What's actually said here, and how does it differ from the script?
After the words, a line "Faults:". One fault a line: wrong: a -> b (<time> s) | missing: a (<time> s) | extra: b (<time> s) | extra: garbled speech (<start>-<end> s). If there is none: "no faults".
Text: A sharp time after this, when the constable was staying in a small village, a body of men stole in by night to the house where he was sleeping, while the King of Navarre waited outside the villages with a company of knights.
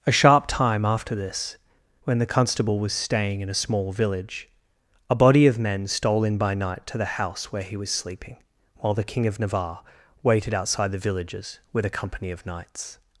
A sharp time after this, when the constable was staying in a small village, a body of men stole in by night to the house where he was sleeping, while the King of Navarre waited outside the villages with a company of knights.
Faults:
no faults